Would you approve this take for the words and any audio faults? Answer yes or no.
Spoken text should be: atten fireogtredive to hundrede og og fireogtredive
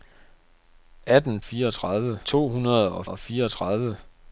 yes